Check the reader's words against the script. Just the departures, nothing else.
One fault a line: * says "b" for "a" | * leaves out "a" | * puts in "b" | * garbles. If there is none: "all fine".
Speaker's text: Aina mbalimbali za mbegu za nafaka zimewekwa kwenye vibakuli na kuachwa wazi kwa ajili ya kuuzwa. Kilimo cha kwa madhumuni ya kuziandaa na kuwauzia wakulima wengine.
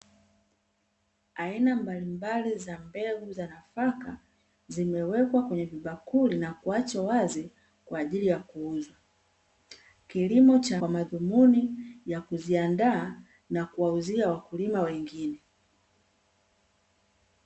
all fine